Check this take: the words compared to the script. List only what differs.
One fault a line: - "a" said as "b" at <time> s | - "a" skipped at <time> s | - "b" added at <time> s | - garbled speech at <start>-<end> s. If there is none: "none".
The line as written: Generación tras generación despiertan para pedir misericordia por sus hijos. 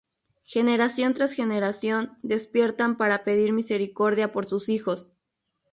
none